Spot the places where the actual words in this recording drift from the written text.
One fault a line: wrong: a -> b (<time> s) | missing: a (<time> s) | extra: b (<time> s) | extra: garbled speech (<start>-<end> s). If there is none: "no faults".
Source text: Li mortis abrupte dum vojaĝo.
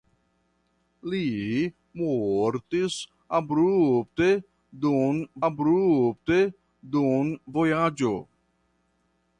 extra: abrupte dum (5.5 s)